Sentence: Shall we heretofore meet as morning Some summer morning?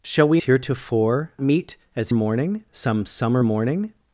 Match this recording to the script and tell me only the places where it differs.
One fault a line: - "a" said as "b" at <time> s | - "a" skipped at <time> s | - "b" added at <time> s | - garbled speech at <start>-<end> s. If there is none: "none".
none